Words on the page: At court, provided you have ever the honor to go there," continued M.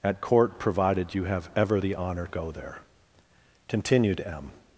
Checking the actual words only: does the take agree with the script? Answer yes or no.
no